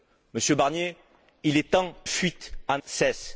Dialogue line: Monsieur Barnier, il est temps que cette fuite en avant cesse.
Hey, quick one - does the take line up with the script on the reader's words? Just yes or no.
no